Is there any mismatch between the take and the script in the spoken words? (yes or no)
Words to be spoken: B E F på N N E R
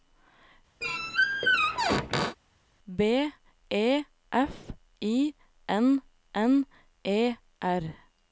yes